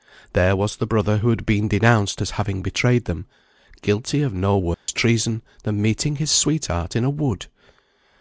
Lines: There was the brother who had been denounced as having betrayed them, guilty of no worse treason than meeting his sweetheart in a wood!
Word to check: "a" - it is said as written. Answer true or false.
true